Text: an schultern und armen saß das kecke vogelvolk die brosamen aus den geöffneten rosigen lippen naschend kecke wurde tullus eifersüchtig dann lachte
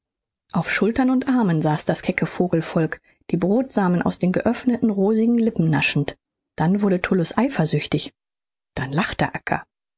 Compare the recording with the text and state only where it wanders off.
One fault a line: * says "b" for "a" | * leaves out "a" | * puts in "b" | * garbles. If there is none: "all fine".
* says "auf" for "an"
* says "dann" for "kecke"